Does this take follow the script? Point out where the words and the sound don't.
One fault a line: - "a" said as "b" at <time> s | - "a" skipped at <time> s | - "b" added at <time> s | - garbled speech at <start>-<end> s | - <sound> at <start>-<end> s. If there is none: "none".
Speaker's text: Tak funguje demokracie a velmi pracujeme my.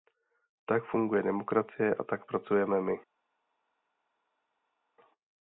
- "velmi" said as "tak" at 2.0 s